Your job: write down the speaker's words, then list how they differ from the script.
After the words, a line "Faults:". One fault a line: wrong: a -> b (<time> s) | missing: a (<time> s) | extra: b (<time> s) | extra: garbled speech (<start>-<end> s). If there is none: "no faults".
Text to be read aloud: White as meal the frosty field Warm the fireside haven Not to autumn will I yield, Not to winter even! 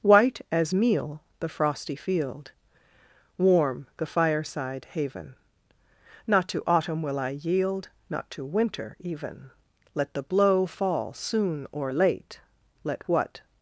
White as meal the frosty field Warm the fireside haven Not to autumn will I yield, Not to winter even! Let the blow fall soon or late, Let what
Faults:
extra: Let the blow fall soon or late Let what (9.9 s)